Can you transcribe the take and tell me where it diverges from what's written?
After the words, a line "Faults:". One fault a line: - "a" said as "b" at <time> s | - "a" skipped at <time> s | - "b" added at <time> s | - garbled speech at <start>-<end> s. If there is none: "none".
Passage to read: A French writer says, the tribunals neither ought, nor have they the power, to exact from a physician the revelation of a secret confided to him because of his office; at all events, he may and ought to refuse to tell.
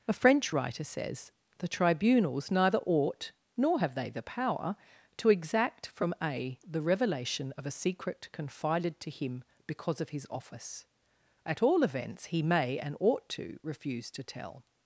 A French writer says, the tribunals neither ought, nor have they the power, to exact from a the revelation of a secret confided to him because of his office; at all events, he may and ought to refuse to tell.
Faults:
- "physician" skipped at 6.6 s